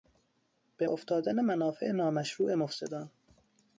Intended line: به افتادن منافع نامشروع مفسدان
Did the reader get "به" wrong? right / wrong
right